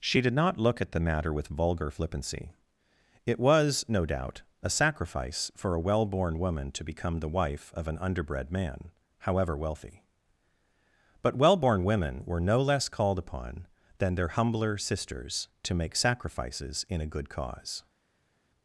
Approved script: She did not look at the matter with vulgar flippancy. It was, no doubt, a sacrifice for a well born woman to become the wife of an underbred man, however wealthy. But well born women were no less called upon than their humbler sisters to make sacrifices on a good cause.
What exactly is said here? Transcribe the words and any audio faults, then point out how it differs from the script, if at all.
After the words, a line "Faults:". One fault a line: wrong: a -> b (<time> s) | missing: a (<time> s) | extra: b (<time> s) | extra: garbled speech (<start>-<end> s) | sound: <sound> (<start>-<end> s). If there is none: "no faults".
She did not look at the matter with vulgar flippancy. It was, no doubt, a sacrifice for a well born woman to become the wife of an underbred man, however wealthy. But well born women were no less called upon than their humbler sisters to make sacrifices in a good cause.
Faults:
wrong: on -> in (16.9 s)